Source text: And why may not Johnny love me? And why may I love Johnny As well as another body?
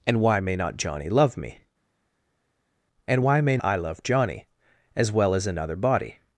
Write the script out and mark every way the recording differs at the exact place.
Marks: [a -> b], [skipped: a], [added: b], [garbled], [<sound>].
And why may not Johnny love me? And why may I love Johnny As well as another body?